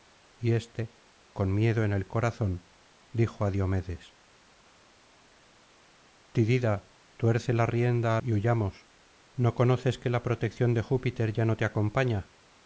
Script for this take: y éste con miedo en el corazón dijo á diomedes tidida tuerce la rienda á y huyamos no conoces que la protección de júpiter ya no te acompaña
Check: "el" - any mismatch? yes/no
no